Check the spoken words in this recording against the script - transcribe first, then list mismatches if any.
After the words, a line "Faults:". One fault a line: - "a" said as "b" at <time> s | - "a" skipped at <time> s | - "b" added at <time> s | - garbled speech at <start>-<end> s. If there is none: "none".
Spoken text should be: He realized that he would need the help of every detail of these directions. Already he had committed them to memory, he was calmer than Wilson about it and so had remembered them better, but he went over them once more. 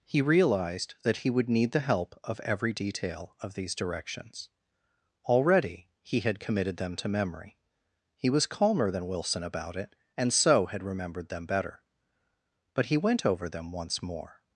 He realized that he would need the help of every detail of these directions. Already he had committed them to memory, he was calmer than Wilson about it and so had remembered them better, but he went over them once more.
Faults:
none